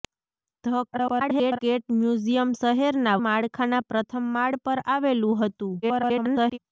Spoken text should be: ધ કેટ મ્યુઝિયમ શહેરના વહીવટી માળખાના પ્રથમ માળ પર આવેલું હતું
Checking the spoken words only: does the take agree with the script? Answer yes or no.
no